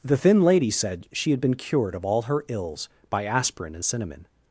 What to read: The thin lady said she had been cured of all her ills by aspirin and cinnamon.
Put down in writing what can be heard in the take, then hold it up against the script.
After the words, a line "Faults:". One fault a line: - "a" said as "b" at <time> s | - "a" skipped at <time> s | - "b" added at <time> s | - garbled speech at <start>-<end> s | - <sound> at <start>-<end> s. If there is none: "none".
The thin lady said she had been cured of all her ills by aspirin and cinnamon.
Faults:
none